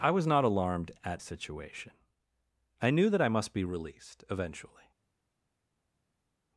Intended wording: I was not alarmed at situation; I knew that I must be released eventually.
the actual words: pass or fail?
pass